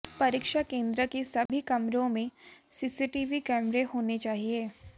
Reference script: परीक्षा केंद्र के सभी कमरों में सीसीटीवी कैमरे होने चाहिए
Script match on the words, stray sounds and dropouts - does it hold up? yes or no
no